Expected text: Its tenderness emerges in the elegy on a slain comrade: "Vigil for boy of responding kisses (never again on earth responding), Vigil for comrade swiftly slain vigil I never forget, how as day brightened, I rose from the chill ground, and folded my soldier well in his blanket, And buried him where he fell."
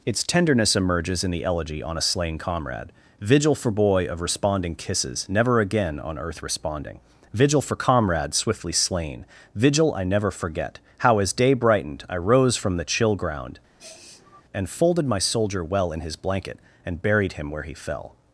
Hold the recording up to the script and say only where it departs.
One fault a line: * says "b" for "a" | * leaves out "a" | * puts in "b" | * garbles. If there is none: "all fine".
all fine